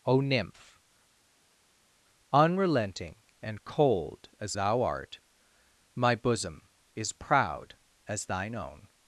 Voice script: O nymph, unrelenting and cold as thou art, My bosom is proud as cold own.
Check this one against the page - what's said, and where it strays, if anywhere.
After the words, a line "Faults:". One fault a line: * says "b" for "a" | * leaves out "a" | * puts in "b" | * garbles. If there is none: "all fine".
O nymph, unrelenting and cold as thou art, My bosom is proud as thine own.
Faults:
* says "thine" for "cold"